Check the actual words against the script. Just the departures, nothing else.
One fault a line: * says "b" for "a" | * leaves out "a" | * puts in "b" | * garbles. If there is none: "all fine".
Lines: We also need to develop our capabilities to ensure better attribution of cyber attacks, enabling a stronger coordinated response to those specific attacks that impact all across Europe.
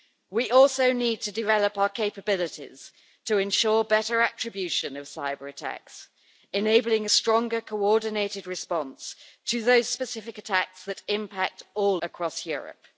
all fine